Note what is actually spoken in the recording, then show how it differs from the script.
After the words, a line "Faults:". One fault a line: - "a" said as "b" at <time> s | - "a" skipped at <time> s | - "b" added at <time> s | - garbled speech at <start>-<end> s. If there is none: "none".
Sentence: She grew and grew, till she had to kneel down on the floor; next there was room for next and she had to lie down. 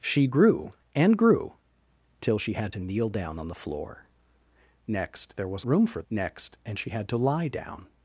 She grew and grew, till she had to kneel down on the floor; next there was room for next and she had to lie down.
Faults:
none